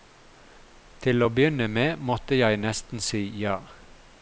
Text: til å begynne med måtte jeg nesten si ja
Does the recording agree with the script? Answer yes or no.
yes